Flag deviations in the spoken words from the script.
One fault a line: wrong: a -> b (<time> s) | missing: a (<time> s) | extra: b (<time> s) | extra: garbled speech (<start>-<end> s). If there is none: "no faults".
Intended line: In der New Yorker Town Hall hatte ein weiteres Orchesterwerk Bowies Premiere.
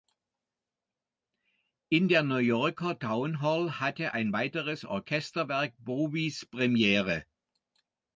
no faults